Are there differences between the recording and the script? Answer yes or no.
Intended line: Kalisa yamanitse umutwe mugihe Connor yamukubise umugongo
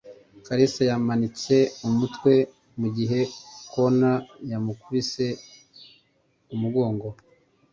no